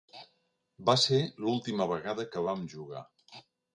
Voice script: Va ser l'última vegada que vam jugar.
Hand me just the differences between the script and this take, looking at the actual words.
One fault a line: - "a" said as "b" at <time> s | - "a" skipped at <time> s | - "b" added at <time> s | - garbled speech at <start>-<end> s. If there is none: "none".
none